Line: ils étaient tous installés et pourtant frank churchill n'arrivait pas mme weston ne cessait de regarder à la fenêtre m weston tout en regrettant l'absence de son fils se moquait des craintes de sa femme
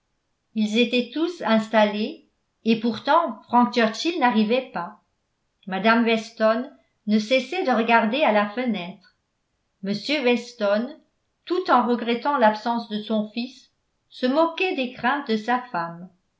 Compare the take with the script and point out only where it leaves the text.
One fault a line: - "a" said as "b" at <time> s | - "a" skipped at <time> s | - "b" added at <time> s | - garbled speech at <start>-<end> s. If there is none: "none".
none